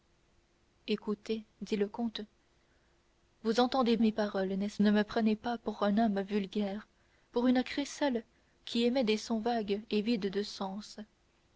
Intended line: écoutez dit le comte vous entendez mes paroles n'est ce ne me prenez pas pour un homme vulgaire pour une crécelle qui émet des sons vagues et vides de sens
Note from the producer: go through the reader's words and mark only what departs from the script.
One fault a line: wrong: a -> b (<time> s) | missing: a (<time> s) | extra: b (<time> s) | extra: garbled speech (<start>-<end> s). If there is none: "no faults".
no faults